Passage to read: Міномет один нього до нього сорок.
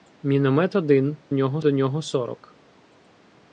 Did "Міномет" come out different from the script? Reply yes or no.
no